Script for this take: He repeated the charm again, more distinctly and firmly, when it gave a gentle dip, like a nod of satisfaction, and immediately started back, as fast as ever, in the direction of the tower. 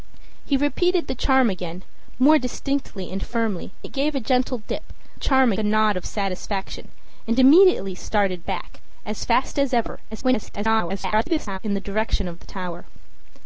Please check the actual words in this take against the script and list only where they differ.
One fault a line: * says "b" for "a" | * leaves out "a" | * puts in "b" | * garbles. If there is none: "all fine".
* leaves out "when"
* says "charm" for "like"
* garbles